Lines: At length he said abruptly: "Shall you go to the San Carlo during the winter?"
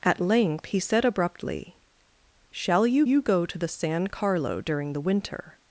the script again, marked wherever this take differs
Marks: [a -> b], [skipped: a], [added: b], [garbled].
At length he said abruptly: "Shall you [added: you] go to the San Carlo during the winter?"